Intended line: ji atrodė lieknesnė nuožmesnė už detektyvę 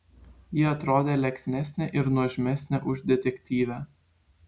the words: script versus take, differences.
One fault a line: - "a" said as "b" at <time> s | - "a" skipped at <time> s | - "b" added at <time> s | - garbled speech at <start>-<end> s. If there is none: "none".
- "ir" added at 2.0 s